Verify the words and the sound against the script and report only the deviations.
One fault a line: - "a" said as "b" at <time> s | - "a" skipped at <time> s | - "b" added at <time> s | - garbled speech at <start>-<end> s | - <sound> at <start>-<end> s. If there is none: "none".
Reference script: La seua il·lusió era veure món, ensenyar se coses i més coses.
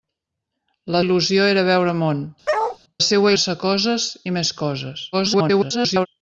- "seua" skipped at 1.0 s
- bark at 2.5-2.8 s
- "ensenyar" said as "seua" at 3.1 s
- garbled speech at 5.1-6.1 s